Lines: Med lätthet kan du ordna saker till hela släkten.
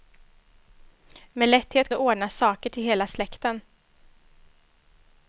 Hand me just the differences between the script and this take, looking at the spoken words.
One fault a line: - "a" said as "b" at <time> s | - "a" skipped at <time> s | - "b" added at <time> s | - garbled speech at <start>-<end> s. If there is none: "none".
- "kan" skipped at 1.9 s